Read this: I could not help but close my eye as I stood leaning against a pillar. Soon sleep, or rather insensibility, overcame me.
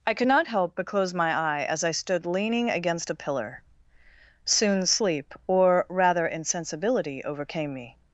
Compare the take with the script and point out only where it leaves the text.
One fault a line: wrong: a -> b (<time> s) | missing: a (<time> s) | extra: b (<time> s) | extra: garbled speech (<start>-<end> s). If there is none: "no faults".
no faults